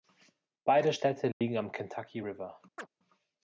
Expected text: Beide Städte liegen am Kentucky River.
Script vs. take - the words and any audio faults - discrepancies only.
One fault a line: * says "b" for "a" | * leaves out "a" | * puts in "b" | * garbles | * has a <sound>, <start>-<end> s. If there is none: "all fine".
* has a dropout, 1.3-1.4 s
* has a chirp, 2.8-2.9 s